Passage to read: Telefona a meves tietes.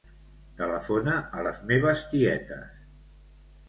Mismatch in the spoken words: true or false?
true